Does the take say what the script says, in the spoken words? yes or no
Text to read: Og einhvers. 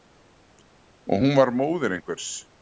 no